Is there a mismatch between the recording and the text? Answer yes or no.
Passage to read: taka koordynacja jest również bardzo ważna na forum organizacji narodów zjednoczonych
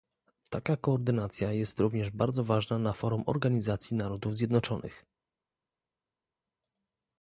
no